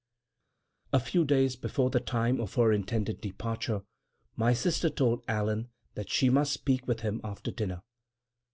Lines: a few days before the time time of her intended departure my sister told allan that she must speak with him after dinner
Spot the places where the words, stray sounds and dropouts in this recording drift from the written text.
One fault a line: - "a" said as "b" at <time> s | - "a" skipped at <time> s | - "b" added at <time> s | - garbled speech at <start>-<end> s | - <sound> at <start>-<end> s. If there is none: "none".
- "time" skipped at 2.4 s